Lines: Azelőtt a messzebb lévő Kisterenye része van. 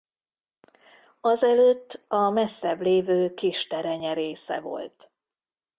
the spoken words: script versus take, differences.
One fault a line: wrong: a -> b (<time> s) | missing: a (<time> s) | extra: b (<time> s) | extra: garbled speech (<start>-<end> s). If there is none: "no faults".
wrong: van -> volt (4.6 s)